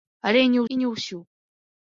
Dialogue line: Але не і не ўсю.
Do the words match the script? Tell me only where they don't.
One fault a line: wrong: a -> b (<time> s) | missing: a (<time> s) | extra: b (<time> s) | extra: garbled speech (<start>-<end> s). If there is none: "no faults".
no faults